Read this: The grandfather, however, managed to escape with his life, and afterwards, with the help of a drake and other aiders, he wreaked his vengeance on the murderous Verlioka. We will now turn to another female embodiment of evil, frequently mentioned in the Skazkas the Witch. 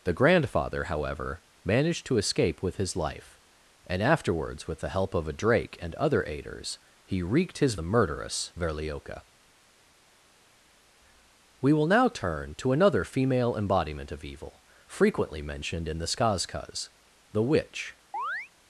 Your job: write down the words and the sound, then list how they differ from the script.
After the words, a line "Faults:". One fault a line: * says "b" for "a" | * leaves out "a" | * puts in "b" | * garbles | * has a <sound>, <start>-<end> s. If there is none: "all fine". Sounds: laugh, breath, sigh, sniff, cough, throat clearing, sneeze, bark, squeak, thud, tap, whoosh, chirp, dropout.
The grandfather, however, managed to escape with his life, and afterwards, with the help of a drake and other aiders, he wreaked his the murderous Verlioka. We will now turn to another female embodiment of evil, frequently mentioned in the Skazkas the Witch.
Faults:
* leaves out "vengeance on"
* has a chirp, 18.1-18.5 s